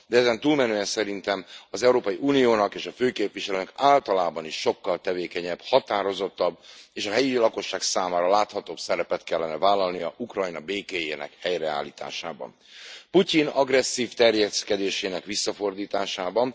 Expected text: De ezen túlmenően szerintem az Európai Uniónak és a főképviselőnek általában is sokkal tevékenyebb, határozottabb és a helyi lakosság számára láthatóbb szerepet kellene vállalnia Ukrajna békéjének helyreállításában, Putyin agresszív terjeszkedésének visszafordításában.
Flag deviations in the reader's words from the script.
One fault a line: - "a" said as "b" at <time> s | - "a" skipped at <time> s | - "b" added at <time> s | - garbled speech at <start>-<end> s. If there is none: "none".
none